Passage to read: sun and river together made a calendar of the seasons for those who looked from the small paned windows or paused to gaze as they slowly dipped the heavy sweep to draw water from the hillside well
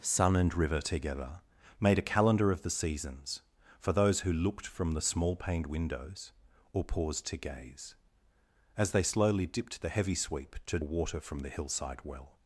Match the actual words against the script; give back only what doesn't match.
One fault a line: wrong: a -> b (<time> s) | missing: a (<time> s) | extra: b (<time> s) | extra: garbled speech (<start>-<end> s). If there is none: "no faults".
missing: draw (10.8 s)